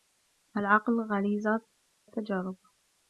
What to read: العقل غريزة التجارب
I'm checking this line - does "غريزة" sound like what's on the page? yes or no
yes